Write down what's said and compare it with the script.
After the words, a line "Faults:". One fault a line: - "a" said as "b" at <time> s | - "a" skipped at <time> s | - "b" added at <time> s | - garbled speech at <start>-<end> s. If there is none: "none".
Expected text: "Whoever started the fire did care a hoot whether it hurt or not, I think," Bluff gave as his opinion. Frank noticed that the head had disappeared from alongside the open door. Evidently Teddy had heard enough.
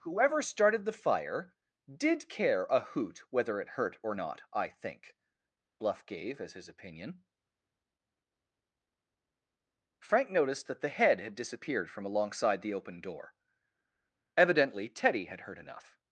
"Whoever started the fire did care a hoot whether it hurt or not, I think," Bluff gave as his opinion. Frank noticed that the head had disappeared from alongside the open door. Evidently Teddy had heard enough.
Faults:
none